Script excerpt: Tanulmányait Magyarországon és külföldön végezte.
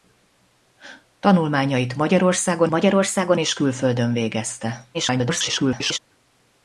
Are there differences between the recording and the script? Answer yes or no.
yes